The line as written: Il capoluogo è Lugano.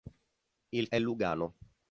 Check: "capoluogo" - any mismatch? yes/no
yes